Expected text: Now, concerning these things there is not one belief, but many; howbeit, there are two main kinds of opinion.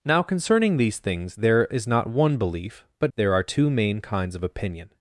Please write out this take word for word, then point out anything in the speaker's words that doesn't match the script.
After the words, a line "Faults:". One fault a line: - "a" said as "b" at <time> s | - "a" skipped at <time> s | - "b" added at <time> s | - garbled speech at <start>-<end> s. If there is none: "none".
Now, concerning these things there is not one belief, but there are two main kinds of opinion.
Faults:
- "many howbeit" skipped at 3.1 s